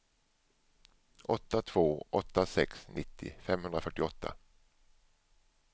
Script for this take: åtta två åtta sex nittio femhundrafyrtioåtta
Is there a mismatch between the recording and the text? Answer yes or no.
no